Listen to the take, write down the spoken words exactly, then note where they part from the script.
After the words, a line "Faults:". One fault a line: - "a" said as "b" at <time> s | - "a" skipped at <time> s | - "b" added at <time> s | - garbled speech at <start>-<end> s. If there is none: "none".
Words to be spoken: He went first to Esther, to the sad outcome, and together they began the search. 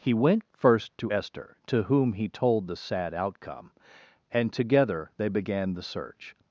He went first to Esther, to whom he told the sad outcome, and together they began the search.
Faults:
- "whom he told" added at 1.8 s